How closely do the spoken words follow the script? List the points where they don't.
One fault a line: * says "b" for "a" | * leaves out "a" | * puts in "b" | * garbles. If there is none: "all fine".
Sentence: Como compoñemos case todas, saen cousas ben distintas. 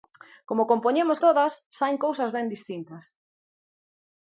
* leaves out "case"